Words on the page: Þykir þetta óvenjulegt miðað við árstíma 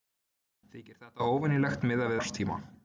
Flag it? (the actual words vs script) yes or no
yes